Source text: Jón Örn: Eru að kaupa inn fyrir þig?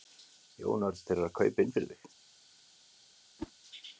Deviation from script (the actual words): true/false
true